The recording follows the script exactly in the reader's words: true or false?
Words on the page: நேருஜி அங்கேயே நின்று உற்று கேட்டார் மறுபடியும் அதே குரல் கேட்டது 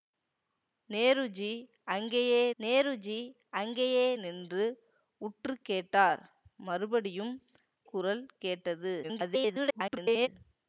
false